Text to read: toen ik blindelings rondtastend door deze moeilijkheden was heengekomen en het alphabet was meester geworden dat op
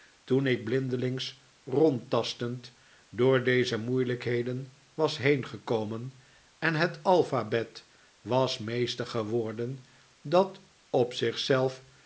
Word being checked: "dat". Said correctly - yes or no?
yes